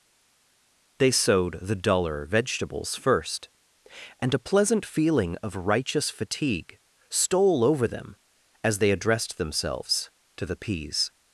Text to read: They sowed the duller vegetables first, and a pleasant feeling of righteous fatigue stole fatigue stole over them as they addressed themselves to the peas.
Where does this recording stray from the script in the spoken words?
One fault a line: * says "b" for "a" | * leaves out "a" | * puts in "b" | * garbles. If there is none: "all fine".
* leaves out "fatigue stole"